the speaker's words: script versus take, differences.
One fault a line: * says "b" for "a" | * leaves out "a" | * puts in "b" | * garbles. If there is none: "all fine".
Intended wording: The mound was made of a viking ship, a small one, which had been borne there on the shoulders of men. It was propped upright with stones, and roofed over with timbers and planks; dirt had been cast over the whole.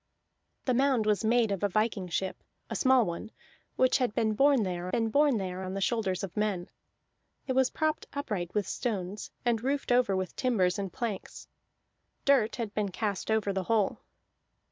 * puts in "been borne there"